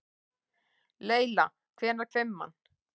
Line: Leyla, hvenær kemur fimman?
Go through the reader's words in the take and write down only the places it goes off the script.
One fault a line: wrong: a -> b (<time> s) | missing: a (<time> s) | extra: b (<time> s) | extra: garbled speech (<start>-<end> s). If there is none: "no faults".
missing: kemur (2.1 s)